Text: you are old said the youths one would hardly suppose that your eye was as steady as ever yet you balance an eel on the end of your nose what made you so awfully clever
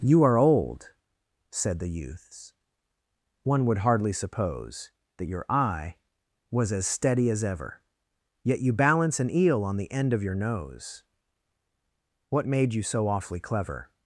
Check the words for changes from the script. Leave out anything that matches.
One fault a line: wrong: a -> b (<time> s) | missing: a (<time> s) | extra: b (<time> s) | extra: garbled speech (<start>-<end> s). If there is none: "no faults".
no faults